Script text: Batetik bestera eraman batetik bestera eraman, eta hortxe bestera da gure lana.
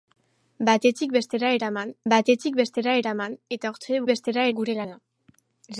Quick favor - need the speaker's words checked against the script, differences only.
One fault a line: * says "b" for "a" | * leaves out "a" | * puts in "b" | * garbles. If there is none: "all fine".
all fine